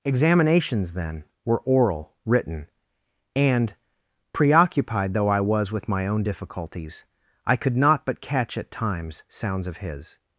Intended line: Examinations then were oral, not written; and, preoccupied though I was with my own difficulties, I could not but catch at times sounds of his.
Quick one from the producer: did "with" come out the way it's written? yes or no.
yes